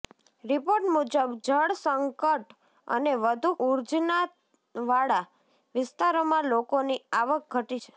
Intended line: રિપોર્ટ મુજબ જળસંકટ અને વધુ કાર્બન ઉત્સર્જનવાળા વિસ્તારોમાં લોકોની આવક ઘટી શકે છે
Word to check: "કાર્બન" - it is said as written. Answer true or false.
false